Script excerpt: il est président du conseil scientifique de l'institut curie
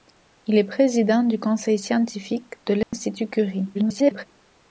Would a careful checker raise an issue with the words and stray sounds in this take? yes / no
yes